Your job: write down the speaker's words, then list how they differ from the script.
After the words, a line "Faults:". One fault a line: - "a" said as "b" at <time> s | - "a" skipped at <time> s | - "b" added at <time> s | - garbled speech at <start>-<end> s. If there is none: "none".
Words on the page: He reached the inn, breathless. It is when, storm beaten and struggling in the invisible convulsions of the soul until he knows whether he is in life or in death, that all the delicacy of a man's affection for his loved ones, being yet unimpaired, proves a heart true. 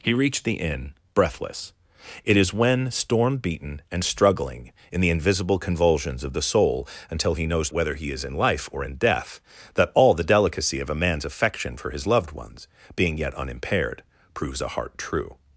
He reached the inn, breathless. It is when, storm beaten and struggling in the invisible convulsions of the soul until he knows whether he is in life or in death, that all the delicacy of a man's affection for his loved ones, being yet unimpaired, proves a heart true.
Faults:
none